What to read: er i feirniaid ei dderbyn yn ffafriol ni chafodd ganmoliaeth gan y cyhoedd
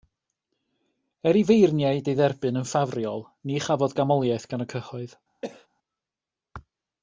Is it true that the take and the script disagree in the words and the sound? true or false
true